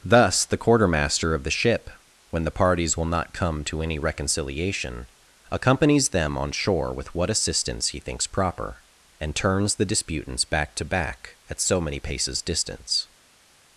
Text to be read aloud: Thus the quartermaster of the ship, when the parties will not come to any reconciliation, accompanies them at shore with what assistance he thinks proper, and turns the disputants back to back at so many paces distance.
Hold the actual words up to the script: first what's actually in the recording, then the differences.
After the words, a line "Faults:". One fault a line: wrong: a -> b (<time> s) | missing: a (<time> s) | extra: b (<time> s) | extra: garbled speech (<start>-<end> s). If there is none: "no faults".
Thus the quartermaster of the ship, when the parties will not come to any reconciliation, accompanies them on shore with what assistance he thinks proper, and turns the disputants back to back at so many paces distance.
Faults:
wrong: at -> on (6.4 s)